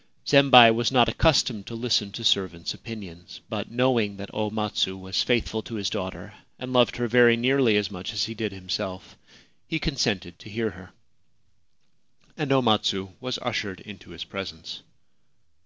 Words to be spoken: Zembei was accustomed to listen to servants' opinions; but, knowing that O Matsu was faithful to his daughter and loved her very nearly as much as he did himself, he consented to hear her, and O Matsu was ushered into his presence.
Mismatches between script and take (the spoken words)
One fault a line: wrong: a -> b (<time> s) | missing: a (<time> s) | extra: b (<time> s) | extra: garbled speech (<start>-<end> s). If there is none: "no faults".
extra: not (0.9 s)